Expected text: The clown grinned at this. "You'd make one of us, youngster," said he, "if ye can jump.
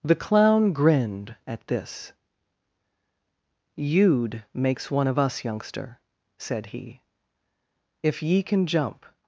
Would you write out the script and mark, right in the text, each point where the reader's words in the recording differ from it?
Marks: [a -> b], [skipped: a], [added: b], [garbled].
The clown grinned at this. "You'd [make -> makes] one of us, youngster," said he, "if ye can jump.